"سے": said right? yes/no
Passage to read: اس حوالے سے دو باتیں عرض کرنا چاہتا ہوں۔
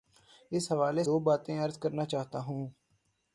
no